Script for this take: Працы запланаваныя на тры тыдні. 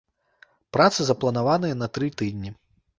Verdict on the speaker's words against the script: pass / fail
pass